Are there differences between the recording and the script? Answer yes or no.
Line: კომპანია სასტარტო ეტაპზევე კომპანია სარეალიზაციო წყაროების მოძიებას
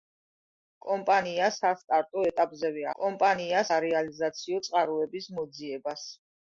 no